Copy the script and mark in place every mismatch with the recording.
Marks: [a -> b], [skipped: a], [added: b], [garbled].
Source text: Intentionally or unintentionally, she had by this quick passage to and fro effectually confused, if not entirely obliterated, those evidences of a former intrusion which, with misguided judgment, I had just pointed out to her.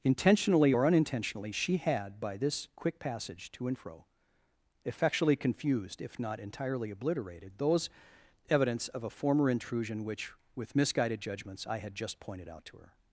Intentionally or unintentionally, she had by this quick passage to and fro effectually confused, if not entirely obliterated, those [evidences -> evidence] of a former intrusion which, with misguided [judgment, -> judgments] I had just pointed out to her.